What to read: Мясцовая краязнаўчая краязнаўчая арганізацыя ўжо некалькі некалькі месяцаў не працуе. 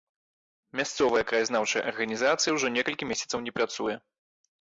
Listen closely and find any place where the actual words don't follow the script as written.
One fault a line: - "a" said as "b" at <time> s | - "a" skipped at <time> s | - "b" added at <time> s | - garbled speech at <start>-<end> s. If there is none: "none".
- "краязнаўчая" skipped at 1.8 s
- "некалькі" skipped at 3.1 s